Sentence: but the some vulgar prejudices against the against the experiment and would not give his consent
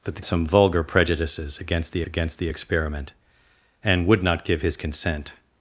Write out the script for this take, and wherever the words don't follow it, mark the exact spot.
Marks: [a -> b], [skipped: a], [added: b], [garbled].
but the some vulgar prejudices against the against the experiment and would not give his consent